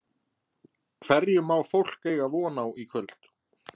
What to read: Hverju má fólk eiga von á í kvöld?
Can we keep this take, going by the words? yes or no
yes